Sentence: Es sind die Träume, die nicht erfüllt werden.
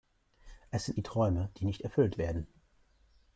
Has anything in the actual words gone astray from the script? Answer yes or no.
no